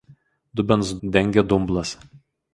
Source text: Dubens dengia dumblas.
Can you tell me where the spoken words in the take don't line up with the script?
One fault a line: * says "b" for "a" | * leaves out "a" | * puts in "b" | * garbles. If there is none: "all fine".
all fine